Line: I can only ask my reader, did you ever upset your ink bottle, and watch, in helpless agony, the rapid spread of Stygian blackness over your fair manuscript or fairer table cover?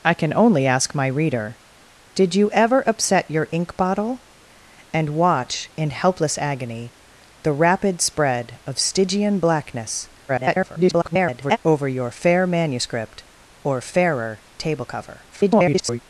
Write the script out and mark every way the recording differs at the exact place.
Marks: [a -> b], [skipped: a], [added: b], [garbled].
I can only ask my reader, did you ever upset your ink bottle, and watch, in helpless agony, the rapid spread of Stygian blackness [garbled] over your fair manuscript or fairer table cover? [garbled]